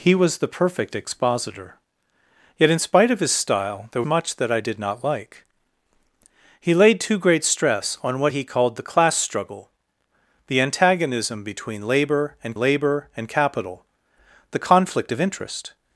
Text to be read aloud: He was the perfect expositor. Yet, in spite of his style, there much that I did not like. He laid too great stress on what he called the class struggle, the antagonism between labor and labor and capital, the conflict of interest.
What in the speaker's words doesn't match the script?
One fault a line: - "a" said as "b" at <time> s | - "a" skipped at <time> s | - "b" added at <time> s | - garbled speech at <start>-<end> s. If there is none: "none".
none